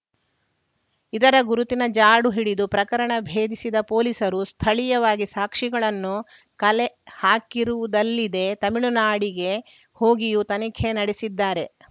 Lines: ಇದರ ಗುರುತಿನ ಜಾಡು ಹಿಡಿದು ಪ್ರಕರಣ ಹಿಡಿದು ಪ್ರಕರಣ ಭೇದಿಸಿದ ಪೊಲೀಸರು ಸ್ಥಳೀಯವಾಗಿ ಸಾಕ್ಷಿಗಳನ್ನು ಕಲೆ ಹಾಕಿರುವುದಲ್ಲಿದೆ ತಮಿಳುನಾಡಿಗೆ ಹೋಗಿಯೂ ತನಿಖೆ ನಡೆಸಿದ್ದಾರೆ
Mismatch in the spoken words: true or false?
true